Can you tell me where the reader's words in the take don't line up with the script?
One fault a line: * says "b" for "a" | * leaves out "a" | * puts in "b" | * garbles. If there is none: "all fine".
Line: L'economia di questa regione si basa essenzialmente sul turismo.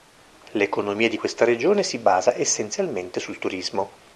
all fine